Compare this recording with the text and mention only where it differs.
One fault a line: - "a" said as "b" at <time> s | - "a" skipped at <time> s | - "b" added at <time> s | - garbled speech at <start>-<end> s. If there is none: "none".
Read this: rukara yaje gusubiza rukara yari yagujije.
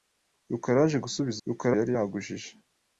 none